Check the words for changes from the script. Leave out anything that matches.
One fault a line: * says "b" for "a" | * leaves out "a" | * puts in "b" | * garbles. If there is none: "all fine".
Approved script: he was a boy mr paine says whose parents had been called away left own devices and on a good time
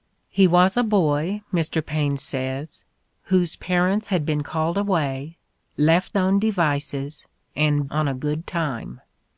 all fine